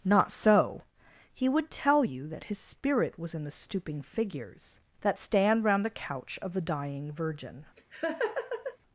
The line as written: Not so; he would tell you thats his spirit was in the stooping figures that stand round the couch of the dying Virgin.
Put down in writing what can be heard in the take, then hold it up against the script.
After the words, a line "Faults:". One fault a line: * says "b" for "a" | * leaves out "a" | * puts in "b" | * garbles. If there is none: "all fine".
Not so; he would tell you that his spirit was in the stooping figures that stand round the couch of the dying Virgin.
Faults:
* says "that" for "thats"